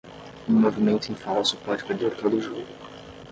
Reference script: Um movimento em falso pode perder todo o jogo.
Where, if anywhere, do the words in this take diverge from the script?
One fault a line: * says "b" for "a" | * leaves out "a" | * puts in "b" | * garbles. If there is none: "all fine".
all fine